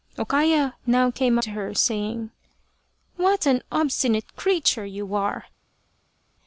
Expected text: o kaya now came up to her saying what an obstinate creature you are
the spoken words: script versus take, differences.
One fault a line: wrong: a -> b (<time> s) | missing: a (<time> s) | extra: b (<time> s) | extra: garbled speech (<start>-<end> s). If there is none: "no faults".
missing: up (1.4 s)